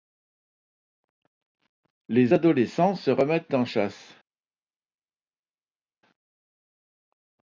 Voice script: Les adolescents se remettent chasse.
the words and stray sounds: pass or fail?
fail